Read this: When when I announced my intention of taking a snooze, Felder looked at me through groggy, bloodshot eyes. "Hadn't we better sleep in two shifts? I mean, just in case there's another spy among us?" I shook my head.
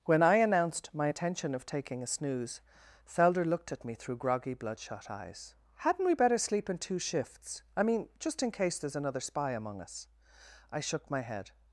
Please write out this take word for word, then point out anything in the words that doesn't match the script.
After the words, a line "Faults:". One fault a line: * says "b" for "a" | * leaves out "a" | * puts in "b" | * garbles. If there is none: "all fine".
When I announced my intention of taking a snooze, Felder looked at me through groggy, bloodshot eyes. "Hadn't we better sleep in two shifts? I mean, just in case there's another spy among us?" I shook my head.
Faults:
* leaves out "when"